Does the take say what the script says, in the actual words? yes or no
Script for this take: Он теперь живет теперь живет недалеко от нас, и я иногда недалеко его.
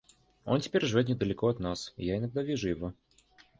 no